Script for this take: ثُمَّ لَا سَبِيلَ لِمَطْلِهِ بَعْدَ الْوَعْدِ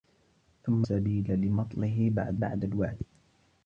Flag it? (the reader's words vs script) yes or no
yes